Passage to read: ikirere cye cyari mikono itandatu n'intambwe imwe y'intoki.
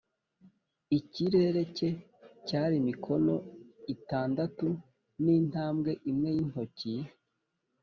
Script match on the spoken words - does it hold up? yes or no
yes